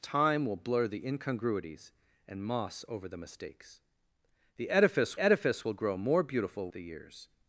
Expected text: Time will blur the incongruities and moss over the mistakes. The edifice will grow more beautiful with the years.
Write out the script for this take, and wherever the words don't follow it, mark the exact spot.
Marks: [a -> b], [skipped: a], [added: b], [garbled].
Time will blur the incongruities and moss over the mistakes. The edifice [added: edifice] will grow more beautiful [skipped: with] the years.